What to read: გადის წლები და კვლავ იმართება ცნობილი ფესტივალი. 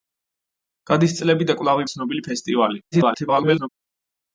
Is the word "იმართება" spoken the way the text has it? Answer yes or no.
no